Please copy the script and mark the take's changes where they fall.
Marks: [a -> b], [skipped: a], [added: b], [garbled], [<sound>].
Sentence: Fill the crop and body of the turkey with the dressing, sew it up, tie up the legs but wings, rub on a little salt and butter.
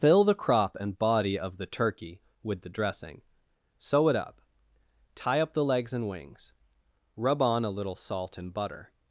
Fill the crop and body of the turkey with the dressing, sew it up, tie up the legs [but -> and] wings, rub on a little salt and butter.